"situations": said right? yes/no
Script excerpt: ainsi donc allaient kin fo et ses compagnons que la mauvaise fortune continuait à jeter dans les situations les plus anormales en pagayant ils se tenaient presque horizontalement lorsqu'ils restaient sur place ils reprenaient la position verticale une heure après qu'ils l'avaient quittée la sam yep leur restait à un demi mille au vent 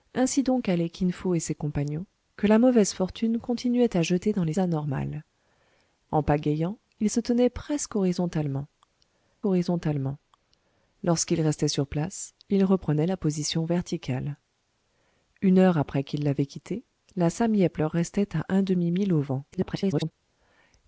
no